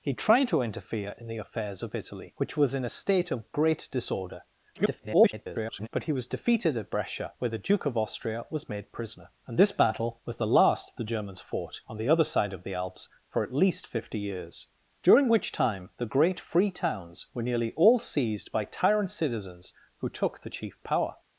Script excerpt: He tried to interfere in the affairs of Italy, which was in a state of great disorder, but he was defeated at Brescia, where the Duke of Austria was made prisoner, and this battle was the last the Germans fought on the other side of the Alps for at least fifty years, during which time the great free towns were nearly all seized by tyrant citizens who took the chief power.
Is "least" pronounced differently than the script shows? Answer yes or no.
no